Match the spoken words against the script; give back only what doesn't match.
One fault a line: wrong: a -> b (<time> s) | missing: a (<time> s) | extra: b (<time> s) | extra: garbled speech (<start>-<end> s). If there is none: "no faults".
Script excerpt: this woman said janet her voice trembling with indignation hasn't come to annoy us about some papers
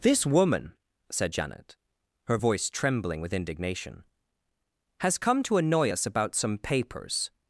wrong: hasn't -> has (5.0 s)